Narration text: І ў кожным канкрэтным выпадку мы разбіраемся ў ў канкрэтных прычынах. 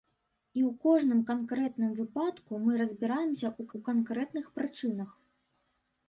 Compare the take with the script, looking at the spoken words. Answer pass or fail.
pass